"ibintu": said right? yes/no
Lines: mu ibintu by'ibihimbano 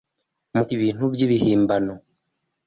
yes